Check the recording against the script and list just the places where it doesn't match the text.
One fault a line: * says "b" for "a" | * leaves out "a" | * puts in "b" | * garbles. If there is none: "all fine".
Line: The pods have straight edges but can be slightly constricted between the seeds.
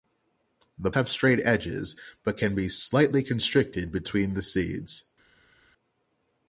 * leaves out "pods"